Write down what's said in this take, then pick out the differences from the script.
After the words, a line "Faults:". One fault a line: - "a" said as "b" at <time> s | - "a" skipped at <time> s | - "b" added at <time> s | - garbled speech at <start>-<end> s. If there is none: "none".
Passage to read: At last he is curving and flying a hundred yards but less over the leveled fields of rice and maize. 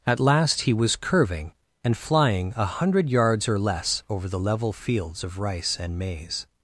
At last he was curving and flying a hundred yards or less over the level fields of rice and maize.
Faults:
- "is" said as "was" at 0.7 s
- "but" said as "or" at 3.5 s
- "leveled" said as "level" at 4.4 s